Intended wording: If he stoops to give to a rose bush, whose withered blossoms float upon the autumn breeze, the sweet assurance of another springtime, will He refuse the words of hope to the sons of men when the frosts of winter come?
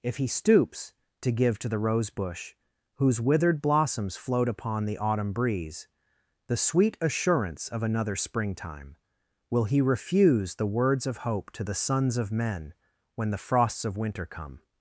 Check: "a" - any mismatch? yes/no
yes